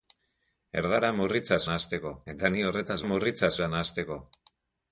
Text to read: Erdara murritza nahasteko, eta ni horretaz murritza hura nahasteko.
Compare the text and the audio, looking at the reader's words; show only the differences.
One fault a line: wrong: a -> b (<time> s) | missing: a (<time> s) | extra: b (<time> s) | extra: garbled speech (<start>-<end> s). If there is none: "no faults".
no faults